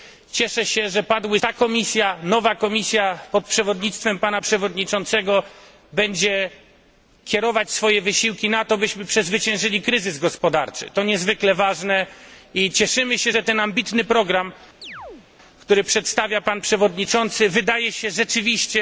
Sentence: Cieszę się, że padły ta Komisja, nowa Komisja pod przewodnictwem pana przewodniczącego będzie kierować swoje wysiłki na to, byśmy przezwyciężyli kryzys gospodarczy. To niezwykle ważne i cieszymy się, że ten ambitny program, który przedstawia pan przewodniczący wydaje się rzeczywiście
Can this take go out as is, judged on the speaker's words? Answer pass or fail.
pass